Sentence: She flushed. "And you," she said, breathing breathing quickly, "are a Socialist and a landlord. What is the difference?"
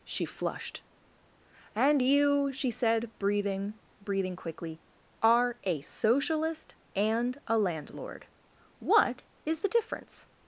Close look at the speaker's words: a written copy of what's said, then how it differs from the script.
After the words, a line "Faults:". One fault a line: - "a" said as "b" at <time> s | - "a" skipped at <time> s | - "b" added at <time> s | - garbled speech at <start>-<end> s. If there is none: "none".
She flushed. "And you," she said, breathing breathing quickly, "are a Socialist and a landlord. What is the difference?"
Faults:
none